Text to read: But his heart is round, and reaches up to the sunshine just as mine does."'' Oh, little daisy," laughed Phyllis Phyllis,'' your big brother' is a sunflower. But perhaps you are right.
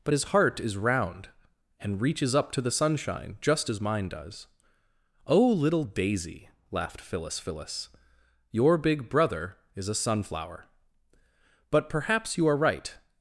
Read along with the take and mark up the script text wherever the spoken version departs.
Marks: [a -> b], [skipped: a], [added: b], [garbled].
But his heart is round, and reaches up to the sunshine just as mine does."'' Oh, little daisy," laughed Phyllis Phyllis,'' your big brother' is a sunflower. But perhaps you are right.